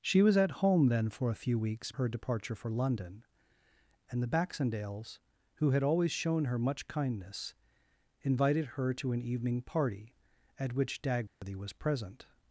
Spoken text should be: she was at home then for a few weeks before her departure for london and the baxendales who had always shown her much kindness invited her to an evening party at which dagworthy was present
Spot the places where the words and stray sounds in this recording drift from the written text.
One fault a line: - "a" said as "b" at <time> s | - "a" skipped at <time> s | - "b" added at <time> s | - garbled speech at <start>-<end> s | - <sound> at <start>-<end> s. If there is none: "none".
- "before" skipped at 1.9 s
- dropout at 11.3-11.4 s